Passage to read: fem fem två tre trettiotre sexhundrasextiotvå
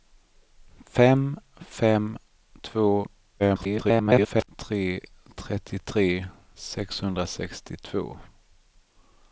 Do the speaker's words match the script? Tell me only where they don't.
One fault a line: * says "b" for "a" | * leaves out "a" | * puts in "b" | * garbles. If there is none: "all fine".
* garbles